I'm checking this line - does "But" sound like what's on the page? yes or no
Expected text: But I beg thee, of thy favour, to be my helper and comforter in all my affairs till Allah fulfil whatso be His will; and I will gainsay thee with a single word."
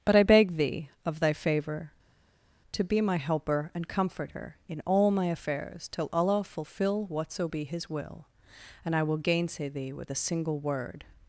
yes